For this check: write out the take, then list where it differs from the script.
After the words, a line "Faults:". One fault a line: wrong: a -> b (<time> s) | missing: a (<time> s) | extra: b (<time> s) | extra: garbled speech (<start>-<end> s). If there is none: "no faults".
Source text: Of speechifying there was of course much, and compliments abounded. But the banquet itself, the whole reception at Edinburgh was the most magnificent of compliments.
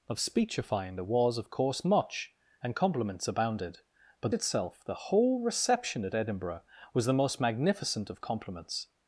Of speechifying there was of course much, and compliments abounded. But itself, the whole reception at Edinburgh was the most magnificent of compliments.
Faults:
missing: the banquet (4.3 s)